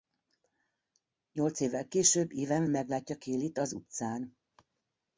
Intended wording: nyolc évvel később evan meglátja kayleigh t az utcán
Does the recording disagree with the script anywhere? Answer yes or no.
no